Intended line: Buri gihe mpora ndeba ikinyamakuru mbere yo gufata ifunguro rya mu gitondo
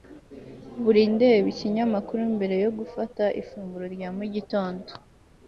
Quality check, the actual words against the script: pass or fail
fail